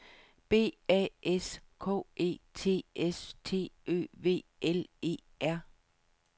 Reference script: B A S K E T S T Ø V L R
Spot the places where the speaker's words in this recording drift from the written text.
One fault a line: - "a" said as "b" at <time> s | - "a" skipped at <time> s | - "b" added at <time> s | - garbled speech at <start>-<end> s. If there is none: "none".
- "E" added at 5.0 s